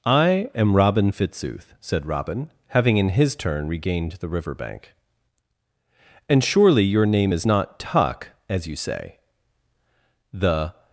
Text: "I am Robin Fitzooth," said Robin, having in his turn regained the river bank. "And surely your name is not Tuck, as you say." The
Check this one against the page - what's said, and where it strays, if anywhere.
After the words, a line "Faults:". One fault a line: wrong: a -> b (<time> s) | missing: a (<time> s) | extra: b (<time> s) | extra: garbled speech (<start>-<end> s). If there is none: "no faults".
"I am Robin Fitzooth," said Robin, having in his turn regained the river bank. "And surely your name is not Tuck, as you say." The
Faults:
no faults